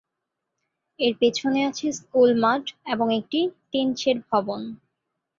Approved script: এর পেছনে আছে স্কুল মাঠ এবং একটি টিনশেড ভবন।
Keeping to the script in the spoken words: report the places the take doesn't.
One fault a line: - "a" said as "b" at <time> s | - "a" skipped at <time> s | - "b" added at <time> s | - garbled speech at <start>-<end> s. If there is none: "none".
none